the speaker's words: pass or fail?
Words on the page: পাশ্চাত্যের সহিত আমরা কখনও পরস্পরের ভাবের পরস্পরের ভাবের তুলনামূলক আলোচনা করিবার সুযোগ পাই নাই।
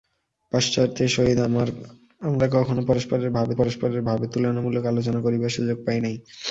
pass